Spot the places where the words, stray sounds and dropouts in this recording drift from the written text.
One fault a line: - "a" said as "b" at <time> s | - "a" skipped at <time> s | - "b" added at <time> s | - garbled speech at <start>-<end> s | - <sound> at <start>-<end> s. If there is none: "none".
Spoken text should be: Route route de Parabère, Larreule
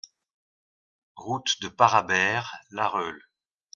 - "route" skipped at 1.6 s